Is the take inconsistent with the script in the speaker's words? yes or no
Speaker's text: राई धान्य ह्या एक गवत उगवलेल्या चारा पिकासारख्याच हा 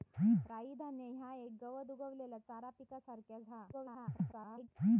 yes